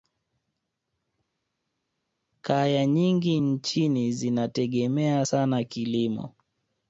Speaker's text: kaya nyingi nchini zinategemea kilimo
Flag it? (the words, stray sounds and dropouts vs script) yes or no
yes